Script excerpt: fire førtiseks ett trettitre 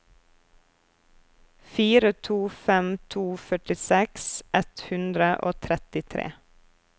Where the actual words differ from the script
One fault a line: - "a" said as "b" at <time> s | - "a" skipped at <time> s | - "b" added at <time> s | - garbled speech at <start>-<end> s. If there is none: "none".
- "to fem to" added at 2.3 s
- "hundre og" added at 4.9 s